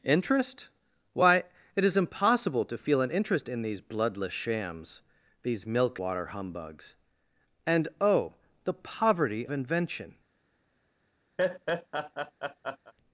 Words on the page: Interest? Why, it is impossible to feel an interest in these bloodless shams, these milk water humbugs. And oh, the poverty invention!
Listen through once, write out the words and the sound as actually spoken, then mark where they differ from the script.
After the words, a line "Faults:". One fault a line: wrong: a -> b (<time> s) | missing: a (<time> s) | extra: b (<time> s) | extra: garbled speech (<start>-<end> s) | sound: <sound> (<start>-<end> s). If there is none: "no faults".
Interest? Why, it is impossible to feel an interest in these bloodless shams, these milk water humbugs. And oh, the poverty invention!
Faults:
sound: laugh (11.4-12.9 s)